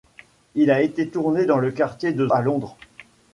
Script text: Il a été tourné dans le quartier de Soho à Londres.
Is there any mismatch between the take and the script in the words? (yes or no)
yes